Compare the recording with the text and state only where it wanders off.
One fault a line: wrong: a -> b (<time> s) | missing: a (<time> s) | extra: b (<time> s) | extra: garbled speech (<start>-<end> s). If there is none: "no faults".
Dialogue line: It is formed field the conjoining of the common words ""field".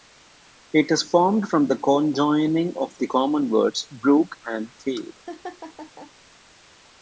wrong: field -> from (1.4 s)
extra: brook and (3.9 s)